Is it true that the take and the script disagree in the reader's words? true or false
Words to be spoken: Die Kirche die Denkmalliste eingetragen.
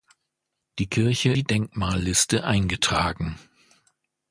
false